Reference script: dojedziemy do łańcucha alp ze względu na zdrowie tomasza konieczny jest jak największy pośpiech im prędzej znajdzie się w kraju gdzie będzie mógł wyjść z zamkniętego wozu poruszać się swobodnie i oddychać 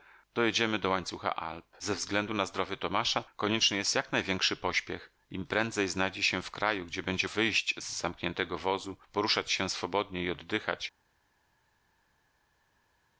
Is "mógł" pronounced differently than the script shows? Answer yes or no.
yes